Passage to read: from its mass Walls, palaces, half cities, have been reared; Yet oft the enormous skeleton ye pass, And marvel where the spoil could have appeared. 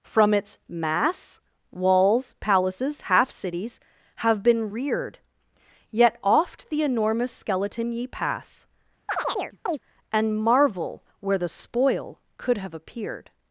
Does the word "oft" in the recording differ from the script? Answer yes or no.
no